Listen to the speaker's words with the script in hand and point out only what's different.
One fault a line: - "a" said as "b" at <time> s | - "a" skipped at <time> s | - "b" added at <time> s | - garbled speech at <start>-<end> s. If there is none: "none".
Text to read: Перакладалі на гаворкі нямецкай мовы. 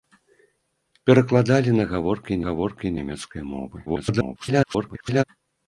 - "гаворкі" added at 2.4 s
- garbled speech at 3.9-5.2 s